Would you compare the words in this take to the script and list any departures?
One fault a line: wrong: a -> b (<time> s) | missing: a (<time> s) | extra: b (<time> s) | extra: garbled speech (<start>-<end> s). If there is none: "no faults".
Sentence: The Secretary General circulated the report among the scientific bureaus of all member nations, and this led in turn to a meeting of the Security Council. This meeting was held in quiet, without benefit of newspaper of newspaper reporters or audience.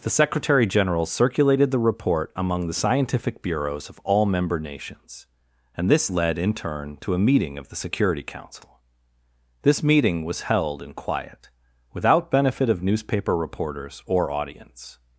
missing: of newspaper (13.4 s)